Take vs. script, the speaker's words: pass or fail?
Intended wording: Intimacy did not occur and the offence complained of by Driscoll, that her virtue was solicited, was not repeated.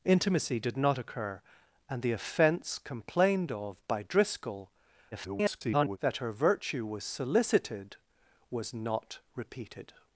fail